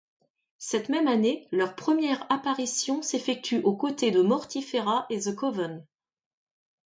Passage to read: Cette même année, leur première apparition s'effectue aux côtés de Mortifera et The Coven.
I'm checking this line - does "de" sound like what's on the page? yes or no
yes